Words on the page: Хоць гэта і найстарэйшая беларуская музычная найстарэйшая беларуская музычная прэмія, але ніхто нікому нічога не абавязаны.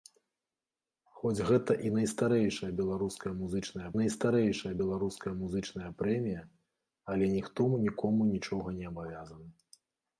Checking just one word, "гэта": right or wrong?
right